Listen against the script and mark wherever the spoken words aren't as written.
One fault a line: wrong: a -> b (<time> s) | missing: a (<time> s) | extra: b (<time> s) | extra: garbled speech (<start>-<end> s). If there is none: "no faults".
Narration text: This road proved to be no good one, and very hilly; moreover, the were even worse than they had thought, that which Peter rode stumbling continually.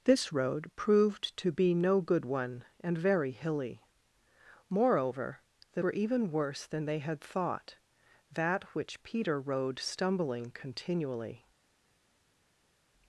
no faults